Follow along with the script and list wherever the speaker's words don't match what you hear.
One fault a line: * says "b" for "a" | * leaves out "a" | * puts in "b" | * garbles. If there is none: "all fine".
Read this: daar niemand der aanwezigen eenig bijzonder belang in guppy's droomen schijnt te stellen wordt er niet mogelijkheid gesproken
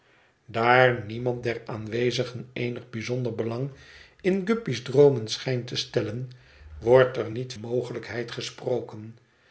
all fine